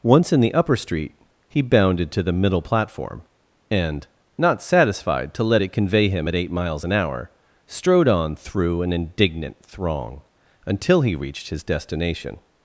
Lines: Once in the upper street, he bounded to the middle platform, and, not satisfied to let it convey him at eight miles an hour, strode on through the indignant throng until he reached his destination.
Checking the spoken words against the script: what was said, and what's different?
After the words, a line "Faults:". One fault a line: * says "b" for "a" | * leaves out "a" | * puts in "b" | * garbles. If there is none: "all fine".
Once in the upper street, he bounded to the middle platform, and, not satisfied to let it convey him at eight miles an hour, strode on through an indignant throng until he reached his destination.
Faults:
* says "an" for "the"